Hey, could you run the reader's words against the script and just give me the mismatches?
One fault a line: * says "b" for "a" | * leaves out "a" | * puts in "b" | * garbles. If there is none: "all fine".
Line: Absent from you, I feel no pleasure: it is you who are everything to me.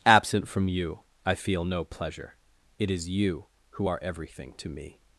all fine